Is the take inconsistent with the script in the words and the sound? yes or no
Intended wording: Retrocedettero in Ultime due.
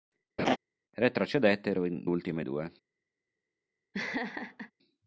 yes